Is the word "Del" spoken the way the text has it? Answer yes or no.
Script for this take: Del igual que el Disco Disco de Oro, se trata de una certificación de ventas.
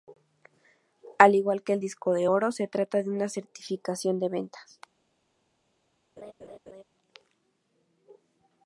no